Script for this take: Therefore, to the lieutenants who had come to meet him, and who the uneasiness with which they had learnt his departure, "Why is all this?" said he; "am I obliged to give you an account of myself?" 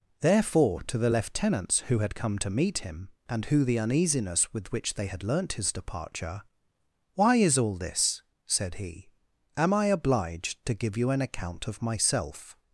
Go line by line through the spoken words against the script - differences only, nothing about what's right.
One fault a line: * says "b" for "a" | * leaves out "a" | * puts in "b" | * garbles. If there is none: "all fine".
all fine